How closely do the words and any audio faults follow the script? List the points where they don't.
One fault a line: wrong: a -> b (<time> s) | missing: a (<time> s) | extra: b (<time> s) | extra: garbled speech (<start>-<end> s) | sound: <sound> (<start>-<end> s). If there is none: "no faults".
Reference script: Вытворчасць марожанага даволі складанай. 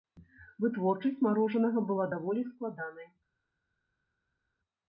extra: была (1.9 s)